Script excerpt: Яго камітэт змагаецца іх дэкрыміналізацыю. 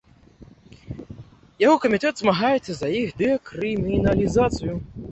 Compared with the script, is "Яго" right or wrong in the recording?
right